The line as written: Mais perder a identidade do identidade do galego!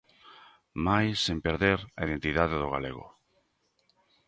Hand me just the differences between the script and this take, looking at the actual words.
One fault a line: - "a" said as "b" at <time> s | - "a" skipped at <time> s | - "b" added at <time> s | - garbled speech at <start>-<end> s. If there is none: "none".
- "sen" added at 1.2 s
- "identidade do" skipped at 2.7 s